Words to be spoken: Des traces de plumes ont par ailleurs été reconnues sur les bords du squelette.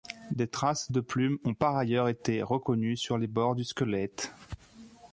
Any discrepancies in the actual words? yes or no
no